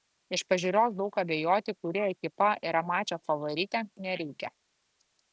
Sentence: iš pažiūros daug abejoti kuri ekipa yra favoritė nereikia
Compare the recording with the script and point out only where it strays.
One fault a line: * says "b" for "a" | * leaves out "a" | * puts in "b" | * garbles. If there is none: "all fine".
* puts in "mačo"